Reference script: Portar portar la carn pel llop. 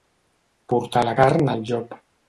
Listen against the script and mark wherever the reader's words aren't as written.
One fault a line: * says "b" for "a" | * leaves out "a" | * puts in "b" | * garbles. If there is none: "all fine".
* leaves out "portar"
* says "al" for "pel"